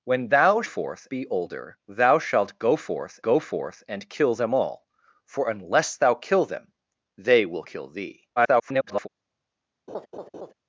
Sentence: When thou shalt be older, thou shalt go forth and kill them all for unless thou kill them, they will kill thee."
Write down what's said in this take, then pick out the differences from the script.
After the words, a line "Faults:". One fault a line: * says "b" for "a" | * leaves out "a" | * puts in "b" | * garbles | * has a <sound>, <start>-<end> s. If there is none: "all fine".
When thou forth be older, thou shalt go forth go forth and kill them all for unless thou kill them, they will kill thee." [garbled]
Faults:
* says "forth" for "shalt"
* puts in "go forth"
* garbles
* has a laugh, 9.9-10.5 s